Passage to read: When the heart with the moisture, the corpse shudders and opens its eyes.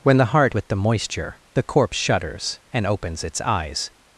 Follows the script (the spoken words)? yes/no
yes